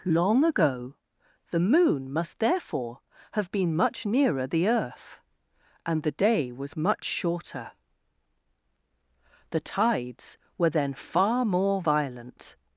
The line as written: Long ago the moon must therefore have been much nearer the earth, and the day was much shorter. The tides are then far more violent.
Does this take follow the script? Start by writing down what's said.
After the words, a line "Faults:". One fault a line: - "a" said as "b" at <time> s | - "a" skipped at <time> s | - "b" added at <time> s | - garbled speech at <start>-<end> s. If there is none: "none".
Long ago the moon must therefore have been much nearer the earth, and the day was much shorter. The tides were then far more violent.
Faults:
- "are" said as "were" at 10.6 s